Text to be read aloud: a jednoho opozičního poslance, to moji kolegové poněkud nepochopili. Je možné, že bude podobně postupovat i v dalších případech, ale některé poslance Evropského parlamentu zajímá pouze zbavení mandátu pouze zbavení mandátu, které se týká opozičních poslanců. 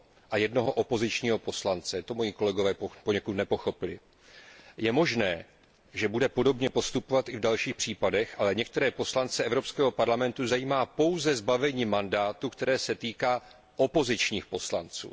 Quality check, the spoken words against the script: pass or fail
fail